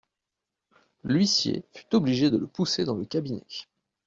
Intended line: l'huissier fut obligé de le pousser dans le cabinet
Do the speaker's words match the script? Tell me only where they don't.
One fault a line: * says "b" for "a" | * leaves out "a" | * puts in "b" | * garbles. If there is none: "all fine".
all fine